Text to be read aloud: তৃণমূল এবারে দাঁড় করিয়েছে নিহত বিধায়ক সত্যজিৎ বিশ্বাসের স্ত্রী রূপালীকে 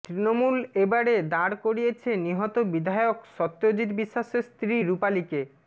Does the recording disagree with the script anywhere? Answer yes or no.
no